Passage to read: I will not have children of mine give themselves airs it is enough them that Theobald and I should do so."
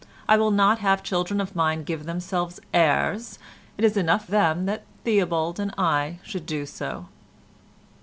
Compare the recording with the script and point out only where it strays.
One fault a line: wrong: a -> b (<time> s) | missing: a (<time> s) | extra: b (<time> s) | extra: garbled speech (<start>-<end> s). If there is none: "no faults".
no faults